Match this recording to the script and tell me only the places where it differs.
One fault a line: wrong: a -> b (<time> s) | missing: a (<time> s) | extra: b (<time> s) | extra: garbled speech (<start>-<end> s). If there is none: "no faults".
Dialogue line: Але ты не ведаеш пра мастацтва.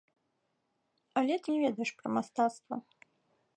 no faults